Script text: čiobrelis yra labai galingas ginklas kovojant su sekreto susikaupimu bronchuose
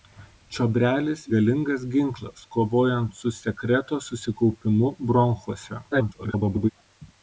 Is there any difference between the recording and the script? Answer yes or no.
yes